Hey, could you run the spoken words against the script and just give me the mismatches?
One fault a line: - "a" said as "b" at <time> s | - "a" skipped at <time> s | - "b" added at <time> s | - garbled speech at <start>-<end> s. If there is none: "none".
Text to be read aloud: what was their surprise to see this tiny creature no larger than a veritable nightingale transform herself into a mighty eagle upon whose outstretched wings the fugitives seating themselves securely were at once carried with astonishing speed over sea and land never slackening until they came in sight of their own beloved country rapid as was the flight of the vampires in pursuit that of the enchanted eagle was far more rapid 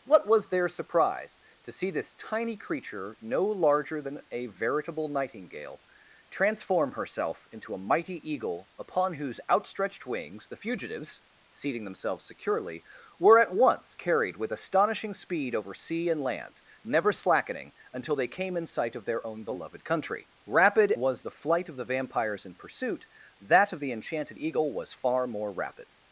- "as" skipped at 20.9 s